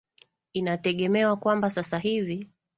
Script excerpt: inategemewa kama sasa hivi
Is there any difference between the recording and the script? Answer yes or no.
yes